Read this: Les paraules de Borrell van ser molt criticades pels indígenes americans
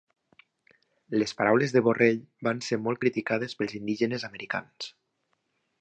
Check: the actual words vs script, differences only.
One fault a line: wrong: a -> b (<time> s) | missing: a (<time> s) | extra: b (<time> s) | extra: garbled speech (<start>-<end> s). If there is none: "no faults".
no faults